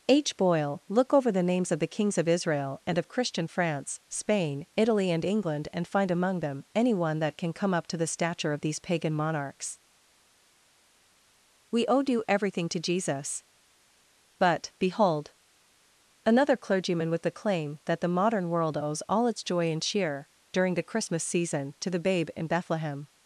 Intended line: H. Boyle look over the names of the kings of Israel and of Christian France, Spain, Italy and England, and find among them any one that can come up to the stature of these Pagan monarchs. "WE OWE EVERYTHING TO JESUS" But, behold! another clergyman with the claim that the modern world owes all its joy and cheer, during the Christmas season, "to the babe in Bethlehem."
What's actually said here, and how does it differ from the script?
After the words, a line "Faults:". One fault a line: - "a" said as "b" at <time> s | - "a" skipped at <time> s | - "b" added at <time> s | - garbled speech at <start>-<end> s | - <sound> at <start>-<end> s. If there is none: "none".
H. Boyle look over the names of the kings of Israel and of Christian France, Spain, Italy and England, and find among them any one that can come up to the stature of these Pagan monarchs. "WE OWE due EVERYTHING TO JESUS" But, behold! another clergyman with the claim that the modern world owes all its joy and cheer, during the Christmas season, "to the babe in Bethlehem."
Faults:
- "due" added at 12.0 s